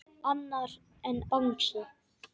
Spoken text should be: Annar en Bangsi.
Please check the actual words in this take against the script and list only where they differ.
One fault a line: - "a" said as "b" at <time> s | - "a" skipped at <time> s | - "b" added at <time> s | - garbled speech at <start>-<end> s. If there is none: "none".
none